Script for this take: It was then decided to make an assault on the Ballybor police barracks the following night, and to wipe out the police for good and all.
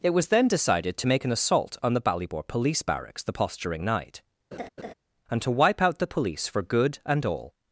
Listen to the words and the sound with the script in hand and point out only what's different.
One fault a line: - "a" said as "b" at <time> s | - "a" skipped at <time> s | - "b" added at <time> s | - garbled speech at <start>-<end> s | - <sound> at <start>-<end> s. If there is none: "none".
- "following" said as "posturing" at 3.3 s
- laugh at 4.5-4.9 s